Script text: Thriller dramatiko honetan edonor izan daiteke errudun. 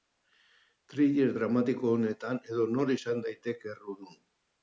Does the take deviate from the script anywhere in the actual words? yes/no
no